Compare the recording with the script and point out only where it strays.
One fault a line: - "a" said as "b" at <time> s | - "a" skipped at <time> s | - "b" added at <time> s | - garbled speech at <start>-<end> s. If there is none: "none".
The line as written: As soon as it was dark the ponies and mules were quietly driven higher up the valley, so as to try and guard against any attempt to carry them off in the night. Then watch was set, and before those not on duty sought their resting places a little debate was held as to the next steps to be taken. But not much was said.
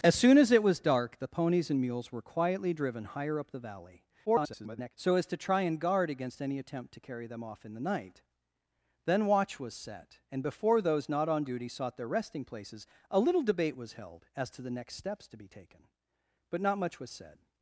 - garbled speech at 4.3-4.9 s